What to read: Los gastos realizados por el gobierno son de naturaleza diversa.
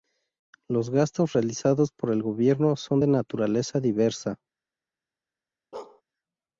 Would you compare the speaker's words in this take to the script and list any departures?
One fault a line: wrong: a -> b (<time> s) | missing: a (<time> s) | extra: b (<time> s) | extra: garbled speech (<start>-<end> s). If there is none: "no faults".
no faults